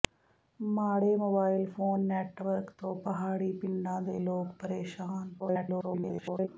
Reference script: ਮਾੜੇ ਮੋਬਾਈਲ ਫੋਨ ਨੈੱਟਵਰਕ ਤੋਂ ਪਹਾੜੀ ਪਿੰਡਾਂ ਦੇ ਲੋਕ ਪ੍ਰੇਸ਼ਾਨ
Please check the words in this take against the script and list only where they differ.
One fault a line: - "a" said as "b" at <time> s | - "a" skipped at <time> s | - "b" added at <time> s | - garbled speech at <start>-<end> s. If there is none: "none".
- garbled speech at 5.4-6.5 s